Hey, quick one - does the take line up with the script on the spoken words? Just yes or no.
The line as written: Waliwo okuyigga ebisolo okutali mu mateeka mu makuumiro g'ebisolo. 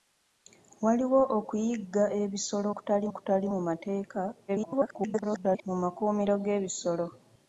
no